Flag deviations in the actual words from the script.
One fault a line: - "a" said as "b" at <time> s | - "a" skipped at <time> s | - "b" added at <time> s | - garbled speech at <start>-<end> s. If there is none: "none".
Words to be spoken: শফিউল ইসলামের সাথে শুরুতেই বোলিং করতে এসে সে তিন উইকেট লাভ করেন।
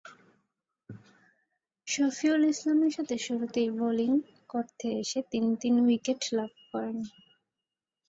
- "সে" said as "তিনি" at 5.3 s